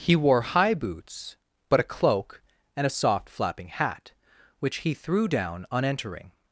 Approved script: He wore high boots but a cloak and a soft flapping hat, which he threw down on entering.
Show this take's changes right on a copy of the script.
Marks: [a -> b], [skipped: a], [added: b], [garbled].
He wore high boots but a cloak and a soft flapping hat, which he threw down on entering.